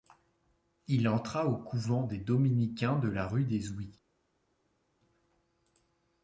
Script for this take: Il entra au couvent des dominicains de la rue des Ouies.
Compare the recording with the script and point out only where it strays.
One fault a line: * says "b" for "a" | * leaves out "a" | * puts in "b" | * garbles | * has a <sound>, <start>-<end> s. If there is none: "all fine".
all fine